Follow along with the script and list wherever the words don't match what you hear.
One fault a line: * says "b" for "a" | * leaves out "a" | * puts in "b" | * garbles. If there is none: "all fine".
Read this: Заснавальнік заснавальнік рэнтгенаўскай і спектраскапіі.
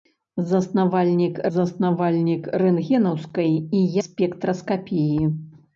all fine